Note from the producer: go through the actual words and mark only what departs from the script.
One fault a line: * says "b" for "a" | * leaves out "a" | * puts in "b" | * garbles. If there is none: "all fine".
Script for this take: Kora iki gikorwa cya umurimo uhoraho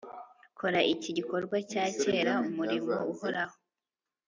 * puts in "kera"